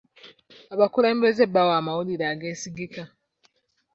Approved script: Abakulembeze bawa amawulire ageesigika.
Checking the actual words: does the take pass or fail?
pass